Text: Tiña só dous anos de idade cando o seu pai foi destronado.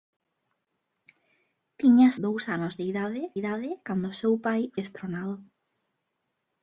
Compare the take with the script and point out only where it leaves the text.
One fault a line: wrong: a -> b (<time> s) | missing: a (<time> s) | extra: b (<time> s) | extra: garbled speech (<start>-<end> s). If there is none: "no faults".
missing: só (2.1 s)
extra: idade (3.4 s)
missing: foi (4.6 s)